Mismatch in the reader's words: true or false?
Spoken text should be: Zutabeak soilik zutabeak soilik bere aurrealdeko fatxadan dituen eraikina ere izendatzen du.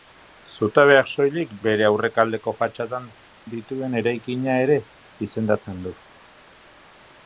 true